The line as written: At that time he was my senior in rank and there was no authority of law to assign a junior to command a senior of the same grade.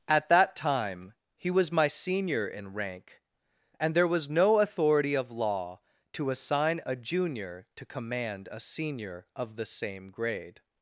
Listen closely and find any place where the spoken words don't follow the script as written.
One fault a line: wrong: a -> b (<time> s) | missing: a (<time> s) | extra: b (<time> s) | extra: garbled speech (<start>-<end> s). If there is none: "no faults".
no faults